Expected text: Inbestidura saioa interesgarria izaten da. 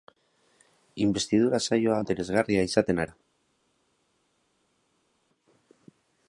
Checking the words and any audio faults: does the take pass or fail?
pass